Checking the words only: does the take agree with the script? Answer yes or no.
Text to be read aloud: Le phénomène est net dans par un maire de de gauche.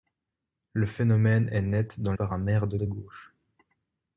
yes